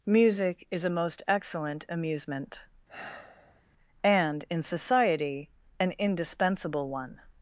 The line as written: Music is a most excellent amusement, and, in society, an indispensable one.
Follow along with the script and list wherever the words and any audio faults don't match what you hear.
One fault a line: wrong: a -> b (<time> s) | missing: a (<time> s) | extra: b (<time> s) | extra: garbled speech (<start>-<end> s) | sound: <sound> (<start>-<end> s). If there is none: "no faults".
sound: sigh (2.9-3.6 s)